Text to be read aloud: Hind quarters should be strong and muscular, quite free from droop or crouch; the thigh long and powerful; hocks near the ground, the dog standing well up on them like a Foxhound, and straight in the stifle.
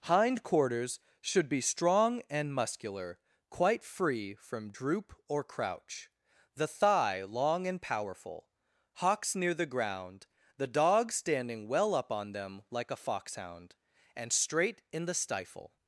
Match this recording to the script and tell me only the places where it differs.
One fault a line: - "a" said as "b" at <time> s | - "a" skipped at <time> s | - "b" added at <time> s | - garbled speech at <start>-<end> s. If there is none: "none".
none